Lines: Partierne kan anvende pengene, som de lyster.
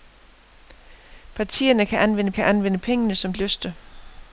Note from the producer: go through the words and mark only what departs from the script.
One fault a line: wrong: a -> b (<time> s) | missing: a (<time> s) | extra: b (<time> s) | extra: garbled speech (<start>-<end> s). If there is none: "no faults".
extra: kan anvende (2.3 s)
missing: de (3.3 s)